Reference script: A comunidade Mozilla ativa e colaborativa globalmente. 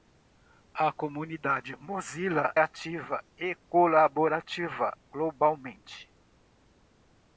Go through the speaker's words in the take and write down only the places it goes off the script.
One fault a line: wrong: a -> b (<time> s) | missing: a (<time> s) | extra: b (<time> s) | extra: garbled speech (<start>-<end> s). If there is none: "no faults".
no faults